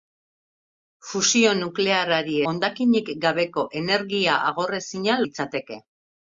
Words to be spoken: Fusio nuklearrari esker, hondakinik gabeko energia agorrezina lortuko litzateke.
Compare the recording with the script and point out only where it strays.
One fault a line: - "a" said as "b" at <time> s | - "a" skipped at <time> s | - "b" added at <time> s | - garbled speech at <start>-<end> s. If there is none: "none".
- "esker" skipped at 2.4 s
- "lortuko" skipped at 5.2 s